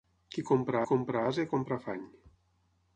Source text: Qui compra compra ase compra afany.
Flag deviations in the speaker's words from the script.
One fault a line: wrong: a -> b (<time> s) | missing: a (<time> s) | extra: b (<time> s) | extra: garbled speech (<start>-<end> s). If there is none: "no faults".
no faults